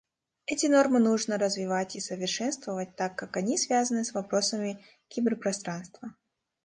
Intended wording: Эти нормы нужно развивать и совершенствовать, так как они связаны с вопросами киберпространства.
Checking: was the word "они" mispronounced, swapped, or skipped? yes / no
no